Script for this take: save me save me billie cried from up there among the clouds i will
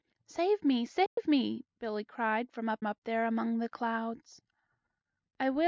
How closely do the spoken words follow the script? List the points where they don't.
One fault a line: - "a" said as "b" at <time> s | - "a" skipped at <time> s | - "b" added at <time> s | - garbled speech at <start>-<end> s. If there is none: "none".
- "up" added at 2.8 s